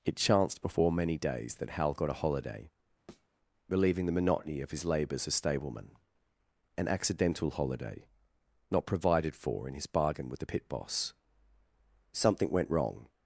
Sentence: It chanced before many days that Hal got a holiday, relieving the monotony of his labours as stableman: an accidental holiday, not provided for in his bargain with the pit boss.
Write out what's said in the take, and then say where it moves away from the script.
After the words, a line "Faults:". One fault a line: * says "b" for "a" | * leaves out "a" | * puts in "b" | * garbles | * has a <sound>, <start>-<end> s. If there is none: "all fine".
It chanced before many days that Hal got a holiday, relieving the monotony of his labours as stableman: an accidental holiday, not provided for in his bargain with the pit boss. Something went wrong
Faults:
* has a thud, 3.1-3.3 s
* puts in "Something went wrong"